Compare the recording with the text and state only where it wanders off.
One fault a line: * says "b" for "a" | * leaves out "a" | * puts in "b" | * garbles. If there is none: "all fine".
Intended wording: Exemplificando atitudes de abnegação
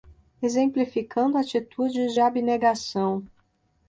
* leaves out "de"